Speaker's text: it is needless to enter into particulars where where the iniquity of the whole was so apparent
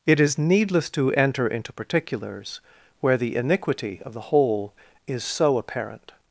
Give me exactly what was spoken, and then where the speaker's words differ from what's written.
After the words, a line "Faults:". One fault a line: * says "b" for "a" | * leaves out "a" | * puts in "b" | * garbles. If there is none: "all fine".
it is needless to enter into particulars where the iniquity of the whole is so apparent
Faults:
* leaves out "where"
* says "is" for "was"